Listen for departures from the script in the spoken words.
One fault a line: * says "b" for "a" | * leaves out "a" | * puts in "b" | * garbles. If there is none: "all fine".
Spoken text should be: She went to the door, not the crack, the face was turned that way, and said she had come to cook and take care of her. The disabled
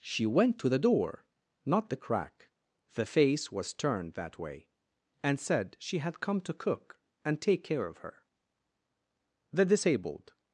all fine